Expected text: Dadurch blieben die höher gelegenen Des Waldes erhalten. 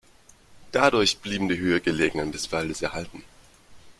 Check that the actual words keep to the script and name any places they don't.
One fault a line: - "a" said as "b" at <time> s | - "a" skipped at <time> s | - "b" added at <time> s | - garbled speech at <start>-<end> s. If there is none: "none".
none